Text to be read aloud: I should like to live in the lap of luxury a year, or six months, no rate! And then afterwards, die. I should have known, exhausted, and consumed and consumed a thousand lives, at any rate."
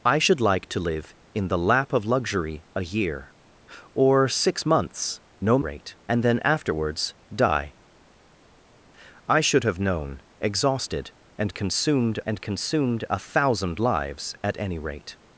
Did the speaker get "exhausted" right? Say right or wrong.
right